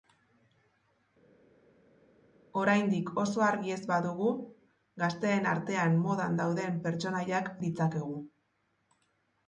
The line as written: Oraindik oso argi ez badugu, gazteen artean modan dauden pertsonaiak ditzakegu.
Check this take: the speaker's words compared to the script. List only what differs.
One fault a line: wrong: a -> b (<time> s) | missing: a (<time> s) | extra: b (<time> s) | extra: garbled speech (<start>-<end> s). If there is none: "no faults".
no faults